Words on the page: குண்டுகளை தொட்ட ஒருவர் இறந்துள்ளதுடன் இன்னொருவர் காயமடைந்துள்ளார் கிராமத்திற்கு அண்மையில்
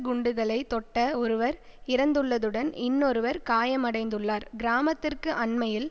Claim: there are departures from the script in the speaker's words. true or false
false